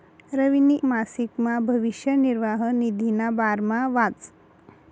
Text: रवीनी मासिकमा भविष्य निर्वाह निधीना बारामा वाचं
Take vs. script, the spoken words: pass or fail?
pass